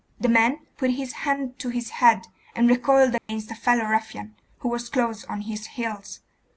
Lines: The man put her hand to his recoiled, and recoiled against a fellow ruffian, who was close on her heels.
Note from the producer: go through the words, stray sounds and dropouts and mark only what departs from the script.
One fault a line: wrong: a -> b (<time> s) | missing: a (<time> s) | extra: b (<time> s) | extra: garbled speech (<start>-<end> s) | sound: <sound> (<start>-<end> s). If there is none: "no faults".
wrong: her -> his (0.9 s)
wrong: recoiled -> head (1.9 s)
sound: dropout (3.2-3.3 s)
wrong: her -> his (5.4 s)